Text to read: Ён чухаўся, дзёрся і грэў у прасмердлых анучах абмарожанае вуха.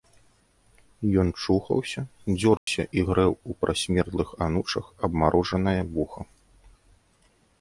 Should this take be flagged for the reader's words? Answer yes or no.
no